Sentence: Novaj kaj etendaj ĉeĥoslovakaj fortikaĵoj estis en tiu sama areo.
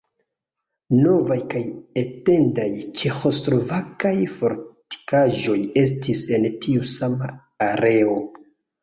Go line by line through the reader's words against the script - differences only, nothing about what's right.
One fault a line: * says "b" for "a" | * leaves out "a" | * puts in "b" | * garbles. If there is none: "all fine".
all fine